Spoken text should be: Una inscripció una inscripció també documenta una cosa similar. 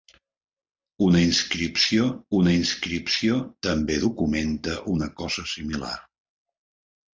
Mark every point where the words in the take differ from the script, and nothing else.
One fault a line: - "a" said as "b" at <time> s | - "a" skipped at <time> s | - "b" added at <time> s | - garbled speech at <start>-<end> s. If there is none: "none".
none